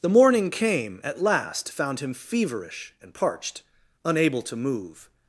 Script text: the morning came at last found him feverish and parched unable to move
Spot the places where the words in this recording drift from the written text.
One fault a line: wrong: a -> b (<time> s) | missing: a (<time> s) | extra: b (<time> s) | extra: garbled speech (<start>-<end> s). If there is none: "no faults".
no faults